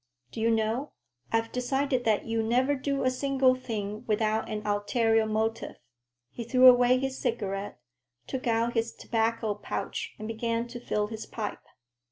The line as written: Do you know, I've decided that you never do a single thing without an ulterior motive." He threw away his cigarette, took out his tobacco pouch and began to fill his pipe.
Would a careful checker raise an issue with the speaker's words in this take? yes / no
no